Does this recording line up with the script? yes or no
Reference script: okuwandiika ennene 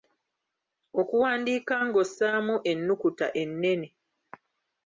no